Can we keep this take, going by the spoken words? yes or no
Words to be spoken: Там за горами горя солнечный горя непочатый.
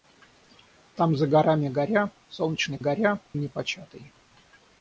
yes